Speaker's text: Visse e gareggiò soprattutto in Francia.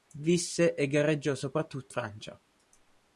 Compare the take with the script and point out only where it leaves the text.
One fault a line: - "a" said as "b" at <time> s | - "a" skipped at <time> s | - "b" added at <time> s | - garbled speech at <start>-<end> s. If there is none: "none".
- "in" skipped at 1.9 s